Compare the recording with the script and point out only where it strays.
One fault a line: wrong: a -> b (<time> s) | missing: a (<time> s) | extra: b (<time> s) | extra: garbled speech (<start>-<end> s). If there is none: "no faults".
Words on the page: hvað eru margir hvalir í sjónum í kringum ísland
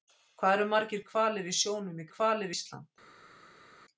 wrong: kringum -> hvalir (2.2 s)